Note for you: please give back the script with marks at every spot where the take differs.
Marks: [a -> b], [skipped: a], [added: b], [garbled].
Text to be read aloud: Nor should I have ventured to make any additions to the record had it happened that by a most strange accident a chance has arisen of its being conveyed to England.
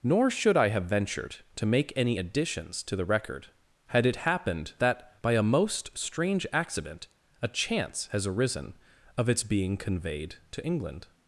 Nor should I have ventured to make any additions to the record had it happened that by a most strange accident a chance has arisen of its being conveyed to England.